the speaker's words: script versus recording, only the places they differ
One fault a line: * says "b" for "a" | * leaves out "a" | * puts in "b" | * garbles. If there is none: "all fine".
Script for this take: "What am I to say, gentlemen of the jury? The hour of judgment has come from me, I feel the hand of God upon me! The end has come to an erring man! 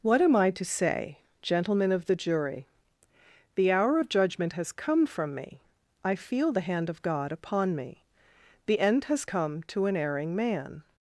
all fine